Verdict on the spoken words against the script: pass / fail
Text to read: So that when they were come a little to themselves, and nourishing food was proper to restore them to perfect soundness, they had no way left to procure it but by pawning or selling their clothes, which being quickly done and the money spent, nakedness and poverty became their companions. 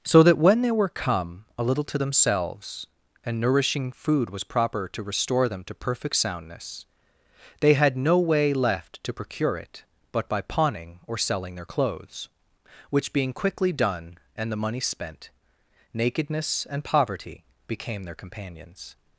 pass